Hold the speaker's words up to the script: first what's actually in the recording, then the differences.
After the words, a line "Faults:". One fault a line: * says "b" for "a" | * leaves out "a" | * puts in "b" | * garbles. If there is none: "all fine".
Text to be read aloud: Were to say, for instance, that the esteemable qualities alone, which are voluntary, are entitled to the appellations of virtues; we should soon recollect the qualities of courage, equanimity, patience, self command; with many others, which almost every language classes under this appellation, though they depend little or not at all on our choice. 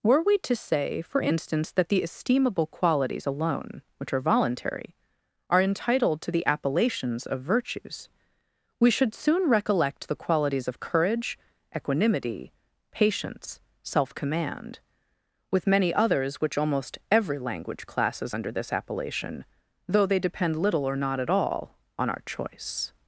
Were we to say, for instance, that the esteemable qualities alone, which are voluntary, are entitled to the appellations of virtues; we should soon recollect the qualities of courage, equanimity, patience, self command; with many others, which almost every language classes under this appellation, though they depend little or not at all on our choice.
Faults:
* puts in "we"